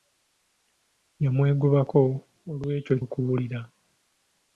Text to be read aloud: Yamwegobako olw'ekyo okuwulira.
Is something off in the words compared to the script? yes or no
no